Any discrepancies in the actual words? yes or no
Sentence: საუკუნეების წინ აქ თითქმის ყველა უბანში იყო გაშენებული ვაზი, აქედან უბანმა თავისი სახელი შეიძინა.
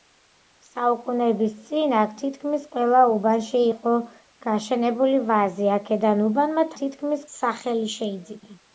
yes